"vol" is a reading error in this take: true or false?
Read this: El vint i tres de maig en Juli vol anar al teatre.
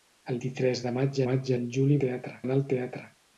true